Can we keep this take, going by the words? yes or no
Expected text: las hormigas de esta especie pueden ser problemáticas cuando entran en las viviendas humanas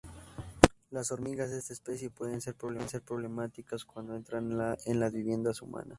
yes